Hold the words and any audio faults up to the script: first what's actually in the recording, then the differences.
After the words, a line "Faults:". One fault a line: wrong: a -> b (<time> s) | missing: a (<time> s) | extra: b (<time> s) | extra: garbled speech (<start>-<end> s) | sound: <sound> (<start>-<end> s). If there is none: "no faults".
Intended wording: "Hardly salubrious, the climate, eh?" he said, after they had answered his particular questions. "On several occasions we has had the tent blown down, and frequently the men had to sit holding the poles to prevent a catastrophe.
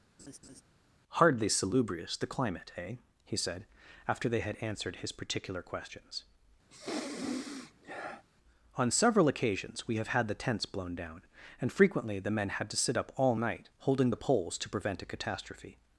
"Hardly salubrious, the climate, eh?" he said, after they had answered his particular questions. "On several occasions we have had the tents blown down, and frequently the men had to sit up all night holding the poles to prevent a catastrophe.
Faults:
sound: laugh (0.2-0.6 s)
sound: sniff (6.7-8.2 s)
wrong: has -> have (10.0 s)
wrong: tent -> tents (10.3 s)
extra: up all night (13.0 s)